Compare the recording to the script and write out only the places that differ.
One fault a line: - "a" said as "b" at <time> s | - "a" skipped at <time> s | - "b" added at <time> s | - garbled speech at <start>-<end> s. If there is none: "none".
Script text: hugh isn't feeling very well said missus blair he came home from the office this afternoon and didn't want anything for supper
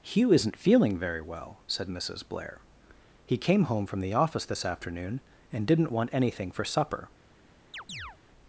none